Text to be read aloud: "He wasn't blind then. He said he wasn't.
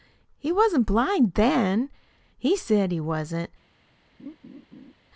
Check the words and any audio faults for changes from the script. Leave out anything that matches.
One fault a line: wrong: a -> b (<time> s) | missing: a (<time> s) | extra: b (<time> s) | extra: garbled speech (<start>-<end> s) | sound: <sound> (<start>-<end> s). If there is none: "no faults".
sound: laugh (4.2-4.9 s)